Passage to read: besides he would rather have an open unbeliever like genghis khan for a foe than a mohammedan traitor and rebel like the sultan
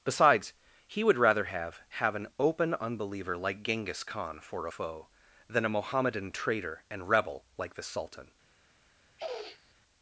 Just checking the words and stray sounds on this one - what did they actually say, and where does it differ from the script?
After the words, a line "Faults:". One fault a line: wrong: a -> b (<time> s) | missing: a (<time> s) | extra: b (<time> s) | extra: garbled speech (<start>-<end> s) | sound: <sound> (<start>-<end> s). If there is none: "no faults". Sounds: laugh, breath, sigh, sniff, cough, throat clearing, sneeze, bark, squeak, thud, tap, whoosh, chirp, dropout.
besides he would rather have have an open unbeliever like genghis khan for a foe than a mohammedan traitor and rebel like the sultan
Faults:
extra: have (1.9 s)
sound: sniff (9.2-9.7 s)